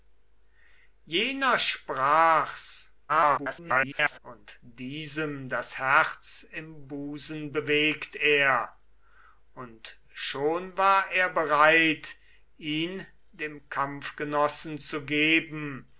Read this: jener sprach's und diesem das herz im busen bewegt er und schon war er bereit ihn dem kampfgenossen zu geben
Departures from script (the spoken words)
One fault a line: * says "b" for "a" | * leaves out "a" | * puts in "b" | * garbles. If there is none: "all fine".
* garbles